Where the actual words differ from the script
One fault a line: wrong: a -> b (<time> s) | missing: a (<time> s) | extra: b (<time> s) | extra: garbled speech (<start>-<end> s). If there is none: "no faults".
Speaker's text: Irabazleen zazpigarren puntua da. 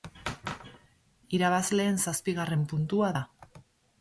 no faults